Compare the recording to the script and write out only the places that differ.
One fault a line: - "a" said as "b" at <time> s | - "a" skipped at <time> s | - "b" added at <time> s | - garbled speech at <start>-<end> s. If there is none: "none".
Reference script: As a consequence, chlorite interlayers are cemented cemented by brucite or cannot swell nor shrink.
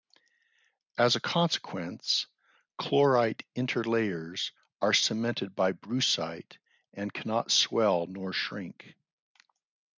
- "cemented" skipped at 5.5 s
- "or" said as "and" at 6.9 s